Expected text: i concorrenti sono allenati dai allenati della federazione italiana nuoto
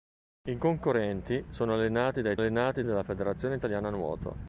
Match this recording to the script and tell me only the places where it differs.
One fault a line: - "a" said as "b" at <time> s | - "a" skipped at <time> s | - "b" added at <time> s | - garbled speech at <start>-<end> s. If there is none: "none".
none